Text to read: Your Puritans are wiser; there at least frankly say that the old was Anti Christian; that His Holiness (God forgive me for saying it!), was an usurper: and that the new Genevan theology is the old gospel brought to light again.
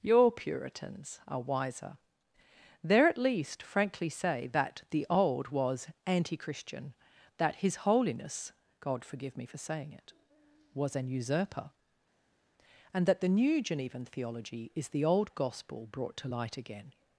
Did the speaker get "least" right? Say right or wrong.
right